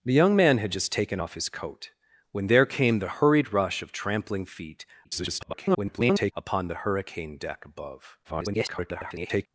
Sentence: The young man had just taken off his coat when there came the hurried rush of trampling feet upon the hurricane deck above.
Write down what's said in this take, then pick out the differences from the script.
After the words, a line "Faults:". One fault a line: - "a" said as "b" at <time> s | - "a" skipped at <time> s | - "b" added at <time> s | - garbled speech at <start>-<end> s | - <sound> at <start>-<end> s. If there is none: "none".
The young man had just taken off his coat when there came the hurried rush of trampling feet [garbled] upon the hurricane deck above. [garbled]
Faults:
- garbled speech at 5.0-6.3 s
- garbled speech at 8.2-9.5 s